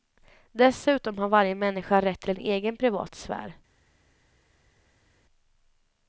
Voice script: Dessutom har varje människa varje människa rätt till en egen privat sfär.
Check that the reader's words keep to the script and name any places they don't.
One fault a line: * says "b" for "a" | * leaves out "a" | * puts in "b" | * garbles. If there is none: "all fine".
* leaves out "varje människa"